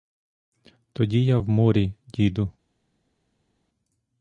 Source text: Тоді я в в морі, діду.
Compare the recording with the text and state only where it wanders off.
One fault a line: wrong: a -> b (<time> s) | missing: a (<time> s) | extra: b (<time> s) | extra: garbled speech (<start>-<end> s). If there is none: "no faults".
missing: в (1.5 s)